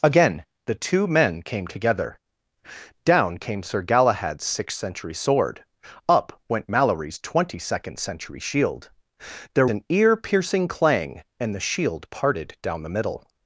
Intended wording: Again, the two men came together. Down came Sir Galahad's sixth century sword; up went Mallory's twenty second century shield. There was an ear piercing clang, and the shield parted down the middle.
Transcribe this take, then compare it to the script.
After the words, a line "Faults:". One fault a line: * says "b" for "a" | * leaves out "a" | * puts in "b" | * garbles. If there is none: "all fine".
Again, the two men came together. Down came Sir Galahad's sixth century sword; up went Mallory's twenty second century shield. There an ear piercing clang, and the shield parted down the middle.
Faults:
* leaves out "was"